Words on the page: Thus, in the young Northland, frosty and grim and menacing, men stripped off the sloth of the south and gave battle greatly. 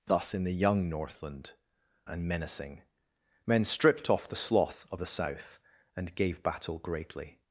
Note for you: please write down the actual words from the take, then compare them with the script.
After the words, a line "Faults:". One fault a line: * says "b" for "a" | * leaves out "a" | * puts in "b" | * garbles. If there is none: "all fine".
Thus, in the young Northland, and menacing, men stripped off the sloth of the south and gave battle greatly.
Faults:
* leaves out "frosty and grim"